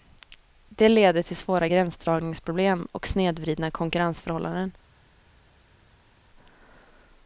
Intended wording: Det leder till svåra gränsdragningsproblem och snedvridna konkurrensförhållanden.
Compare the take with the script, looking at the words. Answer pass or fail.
pass